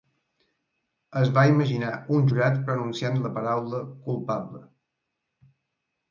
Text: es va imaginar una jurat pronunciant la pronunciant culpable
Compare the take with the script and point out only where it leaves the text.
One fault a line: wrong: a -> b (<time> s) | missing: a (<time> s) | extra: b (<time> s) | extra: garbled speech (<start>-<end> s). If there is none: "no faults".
wrong: una -> un (2.1 s)
wrong: pronunciant -> paraula (3.4 s)